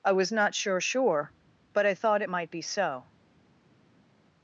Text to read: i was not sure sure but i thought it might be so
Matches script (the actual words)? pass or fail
pass